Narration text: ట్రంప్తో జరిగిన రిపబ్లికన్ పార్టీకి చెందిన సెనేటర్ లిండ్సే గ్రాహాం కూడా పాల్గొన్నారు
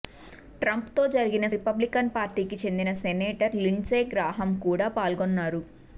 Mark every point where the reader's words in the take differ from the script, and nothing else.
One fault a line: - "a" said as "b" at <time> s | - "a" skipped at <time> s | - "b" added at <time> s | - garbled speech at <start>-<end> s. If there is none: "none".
none